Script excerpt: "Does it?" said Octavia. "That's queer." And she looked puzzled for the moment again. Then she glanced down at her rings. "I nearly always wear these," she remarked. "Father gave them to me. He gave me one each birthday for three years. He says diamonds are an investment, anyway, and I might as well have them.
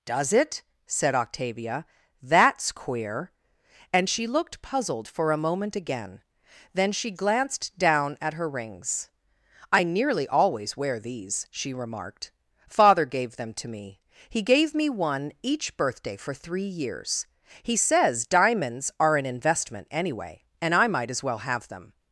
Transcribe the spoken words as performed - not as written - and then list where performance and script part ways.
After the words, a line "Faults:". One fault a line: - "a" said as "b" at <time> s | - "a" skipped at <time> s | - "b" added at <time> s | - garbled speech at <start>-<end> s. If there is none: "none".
"Does it?" said Octavia. "That's queer." And she looked puzzled for a moment again. Then she glanced down at her rings. "I nearly always wear these," she remarked. "Father gave them to me. He gave me one each birthday for three years. He says diamonds are an investment, anyway, and I might as well have them.
Faults:
- "the" said as "a" at 5.3 s